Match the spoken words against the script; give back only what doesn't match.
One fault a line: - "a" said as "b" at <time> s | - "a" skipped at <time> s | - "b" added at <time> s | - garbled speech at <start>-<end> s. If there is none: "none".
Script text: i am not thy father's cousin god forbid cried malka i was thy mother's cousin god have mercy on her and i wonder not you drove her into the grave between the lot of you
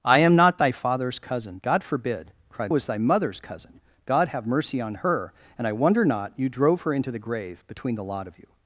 - "malka i" skipped at 2.7 s